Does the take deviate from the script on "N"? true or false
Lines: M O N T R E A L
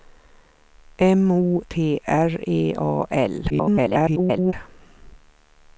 true